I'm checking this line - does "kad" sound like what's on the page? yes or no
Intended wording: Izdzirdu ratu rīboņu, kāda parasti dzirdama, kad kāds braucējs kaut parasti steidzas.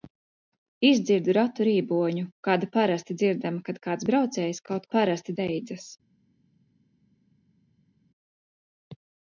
yes